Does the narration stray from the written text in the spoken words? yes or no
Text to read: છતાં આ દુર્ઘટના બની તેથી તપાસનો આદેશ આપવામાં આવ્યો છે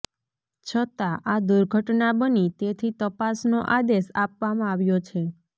no